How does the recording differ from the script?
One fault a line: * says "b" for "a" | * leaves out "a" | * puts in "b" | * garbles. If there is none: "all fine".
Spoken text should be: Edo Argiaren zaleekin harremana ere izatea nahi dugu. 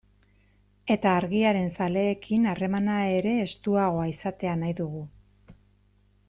* says "Eta" for "Edo"
* puts in "estuagoa"